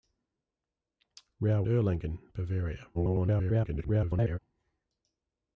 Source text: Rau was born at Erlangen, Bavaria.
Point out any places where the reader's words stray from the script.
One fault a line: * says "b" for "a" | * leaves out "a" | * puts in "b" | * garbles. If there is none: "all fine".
* leaves out "was born at"
* garbles